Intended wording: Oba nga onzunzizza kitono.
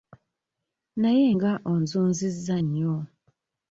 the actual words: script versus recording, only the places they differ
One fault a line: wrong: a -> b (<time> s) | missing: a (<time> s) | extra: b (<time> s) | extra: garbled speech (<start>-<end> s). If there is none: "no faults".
wrong: Oba -> Naye (1.0 s)
wrong: kitono -> nnyo (2.6 s)